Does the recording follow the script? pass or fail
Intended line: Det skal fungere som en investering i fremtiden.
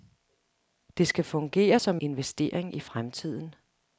fail